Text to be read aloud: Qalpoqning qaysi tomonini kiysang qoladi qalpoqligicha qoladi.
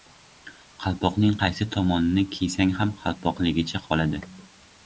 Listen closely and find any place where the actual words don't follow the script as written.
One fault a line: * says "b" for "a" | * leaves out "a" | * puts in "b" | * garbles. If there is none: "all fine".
* says "ham" for "qoladi"